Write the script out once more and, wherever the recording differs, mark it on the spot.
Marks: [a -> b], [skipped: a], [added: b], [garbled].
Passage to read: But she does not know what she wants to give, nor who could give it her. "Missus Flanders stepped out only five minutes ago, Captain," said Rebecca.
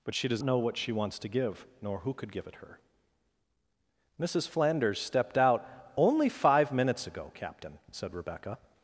But she does [skipped: not] know what she wants to give, nor who could give it her. "Missus Flanders stepped out only five minutes ago, Captain," said Rebecca.